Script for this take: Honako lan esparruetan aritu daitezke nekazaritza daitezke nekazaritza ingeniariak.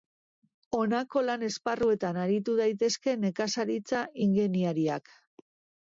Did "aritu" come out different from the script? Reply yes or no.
no